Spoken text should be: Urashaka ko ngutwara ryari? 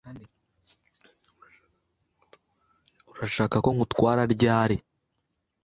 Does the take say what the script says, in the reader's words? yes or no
yes